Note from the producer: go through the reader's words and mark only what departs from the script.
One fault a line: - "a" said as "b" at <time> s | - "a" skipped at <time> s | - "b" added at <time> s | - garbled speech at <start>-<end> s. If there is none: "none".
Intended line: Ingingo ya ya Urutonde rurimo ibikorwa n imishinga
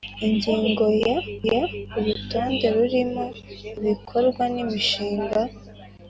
none